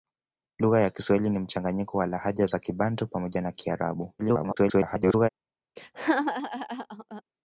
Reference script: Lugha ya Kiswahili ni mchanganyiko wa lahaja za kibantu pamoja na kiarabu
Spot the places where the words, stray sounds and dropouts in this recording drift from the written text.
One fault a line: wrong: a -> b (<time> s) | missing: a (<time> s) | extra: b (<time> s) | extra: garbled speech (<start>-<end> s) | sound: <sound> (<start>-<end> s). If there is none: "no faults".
extra: garbled speech (4.2-5.3 s)
sound: laugh (5.8-7.2 s)